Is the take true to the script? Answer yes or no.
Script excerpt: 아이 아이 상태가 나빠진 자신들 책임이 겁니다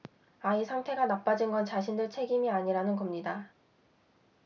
no